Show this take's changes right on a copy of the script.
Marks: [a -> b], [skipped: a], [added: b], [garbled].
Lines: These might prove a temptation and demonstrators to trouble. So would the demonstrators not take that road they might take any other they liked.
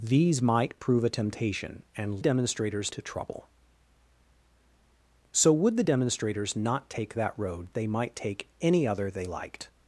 These might prove a temptation and demonstrators to trouble. So would the demonstrators not take that road they might take any other they liked.